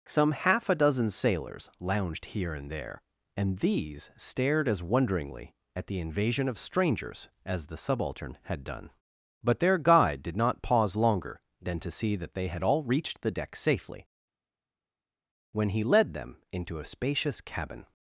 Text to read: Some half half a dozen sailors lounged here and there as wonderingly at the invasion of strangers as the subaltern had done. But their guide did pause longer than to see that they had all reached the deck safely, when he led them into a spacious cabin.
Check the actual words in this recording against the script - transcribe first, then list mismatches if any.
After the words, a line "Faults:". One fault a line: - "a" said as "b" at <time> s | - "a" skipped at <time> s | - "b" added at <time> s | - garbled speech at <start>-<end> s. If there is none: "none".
Some half a dozen sailors lounged here and there and these stared as wonderingly at the invasion of strangers as the subaltern had done. But their guide did not pause longer than to see that they had all reached the deck safely, when he led them into a spacious cabin.
Faults:
- "half" skipped at 0.7 s
- "and these stared" added at 3.4 s
- "not" added at 10.4 s